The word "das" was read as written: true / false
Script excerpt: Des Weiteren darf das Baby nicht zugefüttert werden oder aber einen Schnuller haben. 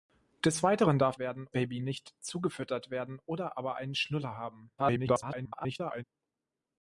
false